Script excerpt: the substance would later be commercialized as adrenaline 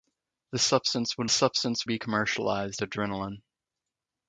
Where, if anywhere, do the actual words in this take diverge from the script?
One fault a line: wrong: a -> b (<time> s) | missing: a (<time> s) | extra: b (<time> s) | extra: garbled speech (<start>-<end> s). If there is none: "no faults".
wrong: later -> substance (1.3 s)
missing: as (2.8 s)